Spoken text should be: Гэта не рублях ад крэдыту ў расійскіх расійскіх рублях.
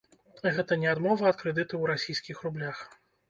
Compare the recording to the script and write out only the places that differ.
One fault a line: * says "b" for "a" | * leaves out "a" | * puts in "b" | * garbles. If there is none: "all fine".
* says "адмова" for "рублях"
* leaves out "расійскіх"